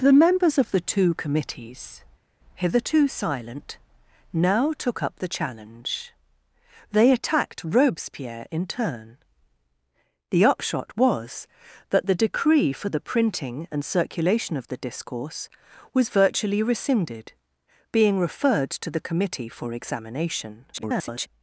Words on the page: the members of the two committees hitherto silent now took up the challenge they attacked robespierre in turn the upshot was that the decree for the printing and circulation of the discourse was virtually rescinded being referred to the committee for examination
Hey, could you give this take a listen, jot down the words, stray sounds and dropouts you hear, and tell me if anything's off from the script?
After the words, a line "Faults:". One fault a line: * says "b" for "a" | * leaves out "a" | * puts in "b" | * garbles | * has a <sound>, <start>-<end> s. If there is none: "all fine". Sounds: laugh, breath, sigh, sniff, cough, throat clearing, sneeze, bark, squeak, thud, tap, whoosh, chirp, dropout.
the members of the two committees hitherto silent now took up the challenge they attacked robespierre in turn the upshot was that the decree for the printing and circulation of the discourse was virtually rescinded being referred to the committee for examination [garbled]
Faults:
* garbles